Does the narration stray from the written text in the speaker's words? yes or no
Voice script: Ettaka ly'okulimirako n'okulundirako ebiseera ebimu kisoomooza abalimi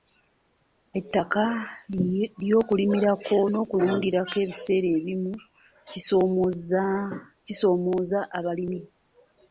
no